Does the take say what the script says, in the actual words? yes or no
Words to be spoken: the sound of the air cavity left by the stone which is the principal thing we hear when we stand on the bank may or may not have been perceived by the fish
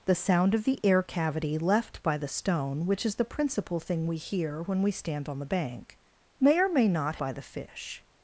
no